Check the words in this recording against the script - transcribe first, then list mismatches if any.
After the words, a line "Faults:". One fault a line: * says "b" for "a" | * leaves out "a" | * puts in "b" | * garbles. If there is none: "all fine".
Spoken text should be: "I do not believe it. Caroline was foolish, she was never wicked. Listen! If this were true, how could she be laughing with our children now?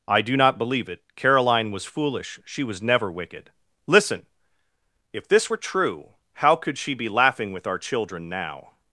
"I do not believe it. Caroline was foolish, she was never wicked. Listen! If this were true, how could she be laughing with our children now?
Faults:
all fine